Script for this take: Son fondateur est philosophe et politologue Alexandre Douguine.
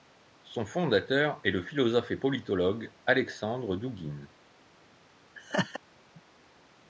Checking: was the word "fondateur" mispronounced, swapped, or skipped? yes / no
no